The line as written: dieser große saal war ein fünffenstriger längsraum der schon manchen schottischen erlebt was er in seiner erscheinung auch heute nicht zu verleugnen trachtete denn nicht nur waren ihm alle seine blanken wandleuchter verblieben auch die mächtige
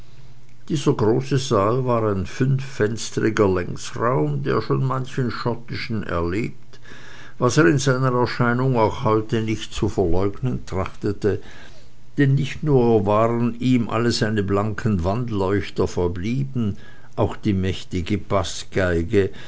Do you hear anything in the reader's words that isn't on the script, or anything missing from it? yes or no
no